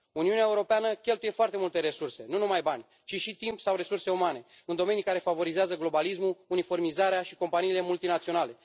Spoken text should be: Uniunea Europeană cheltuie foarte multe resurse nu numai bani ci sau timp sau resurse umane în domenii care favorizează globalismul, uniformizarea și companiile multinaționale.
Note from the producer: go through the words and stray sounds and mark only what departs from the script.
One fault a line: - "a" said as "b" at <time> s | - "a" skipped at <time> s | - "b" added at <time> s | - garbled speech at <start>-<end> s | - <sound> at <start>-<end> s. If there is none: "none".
- "sau" said as "și" at 3.1 s